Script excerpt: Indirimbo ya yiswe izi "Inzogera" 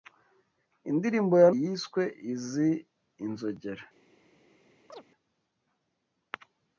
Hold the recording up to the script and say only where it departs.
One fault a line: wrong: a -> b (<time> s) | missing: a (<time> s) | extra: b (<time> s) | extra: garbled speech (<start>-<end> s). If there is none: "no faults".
no faults